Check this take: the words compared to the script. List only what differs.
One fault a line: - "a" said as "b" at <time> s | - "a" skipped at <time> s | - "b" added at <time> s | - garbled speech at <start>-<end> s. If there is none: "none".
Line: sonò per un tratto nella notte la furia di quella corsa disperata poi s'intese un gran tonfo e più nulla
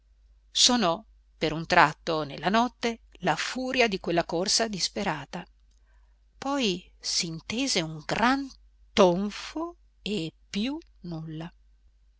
none